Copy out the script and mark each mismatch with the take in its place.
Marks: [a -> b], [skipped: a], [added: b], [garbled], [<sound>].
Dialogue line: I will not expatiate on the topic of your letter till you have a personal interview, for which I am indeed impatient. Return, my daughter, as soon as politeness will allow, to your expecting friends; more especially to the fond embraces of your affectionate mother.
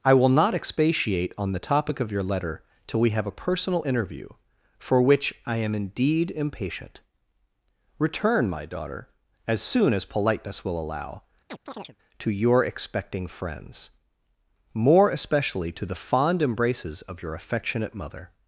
I will not expatiate on the topic of your letter till [you -> we] have a personal interview, for which I am indeed impatient. Return, my daughter, as soon as politeness will allow, [chirp] to your expecting friends; more especially to the fond embraces of your affectionate mother.